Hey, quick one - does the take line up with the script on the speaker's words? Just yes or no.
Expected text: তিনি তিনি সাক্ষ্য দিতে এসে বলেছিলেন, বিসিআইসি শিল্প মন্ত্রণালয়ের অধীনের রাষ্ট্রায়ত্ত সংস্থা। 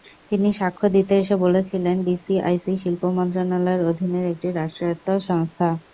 no